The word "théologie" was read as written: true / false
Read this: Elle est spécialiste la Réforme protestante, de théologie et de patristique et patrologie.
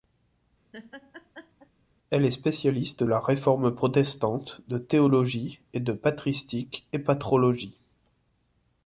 true